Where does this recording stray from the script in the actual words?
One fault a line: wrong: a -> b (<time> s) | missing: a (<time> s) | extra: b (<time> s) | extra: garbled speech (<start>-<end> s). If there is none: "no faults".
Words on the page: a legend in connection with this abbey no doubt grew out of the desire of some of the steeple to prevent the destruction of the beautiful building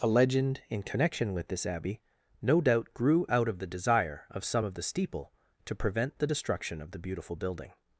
no faults